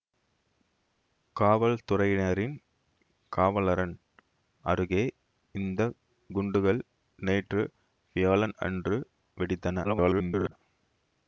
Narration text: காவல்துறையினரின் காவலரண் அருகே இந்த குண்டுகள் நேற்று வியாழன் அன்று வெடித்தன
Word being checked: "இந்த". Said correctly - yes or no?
yes